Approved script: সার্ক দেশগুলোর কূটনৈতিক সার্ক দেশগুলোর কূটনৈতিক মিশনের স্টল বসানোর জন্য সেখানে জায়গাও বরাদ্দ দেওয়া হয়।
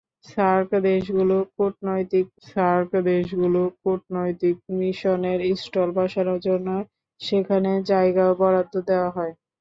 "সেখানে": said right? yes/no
yes